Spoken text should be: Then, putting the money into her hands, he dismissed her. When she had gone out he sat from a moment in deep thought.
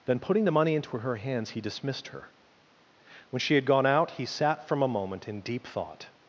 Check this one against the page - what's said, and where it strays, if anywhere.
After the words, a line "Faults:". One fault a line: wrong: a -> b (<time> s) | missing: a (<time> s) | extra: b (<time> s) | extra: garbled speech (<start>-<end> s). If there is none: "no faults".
Then, putting the money into her hands, he dismissed her. When she had gone out he sat from a moment in deep thought.
Faults:
no faults